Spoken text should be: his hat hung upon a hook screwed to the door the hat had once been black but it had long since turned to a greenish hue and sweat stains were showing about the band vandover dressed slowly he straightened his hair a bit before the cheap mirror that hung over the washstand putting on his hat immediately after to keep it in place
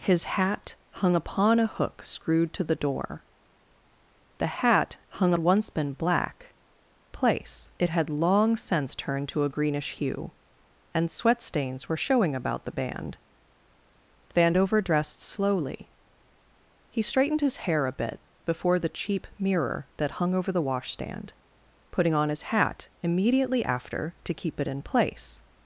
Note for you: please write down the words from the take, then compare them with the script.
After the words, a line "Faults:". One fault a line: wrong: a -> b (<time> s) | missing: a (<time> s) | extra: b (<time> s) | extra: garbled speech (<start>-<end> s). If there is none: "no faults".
his hat hung upon a hook screwed to the door the hat hung once been black place it had long since turned to a greenish hue and sweat stains were showing about the band vandover dressed slowly he straightened his hair a bit before the cheap mirror that hung over the washstand putting on his hat immediately after to keep it in place
Faults:
wrong: had -> hung (5.1 s)
wrong: but -> place (7.1 s)